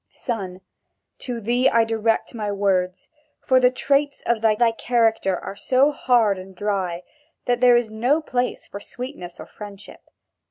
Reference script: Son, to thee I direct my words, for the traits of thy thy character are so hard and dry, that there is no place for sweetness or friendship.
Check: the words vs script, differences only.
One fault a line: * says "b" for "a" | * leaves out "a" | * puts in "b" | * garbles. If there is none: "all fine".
all fine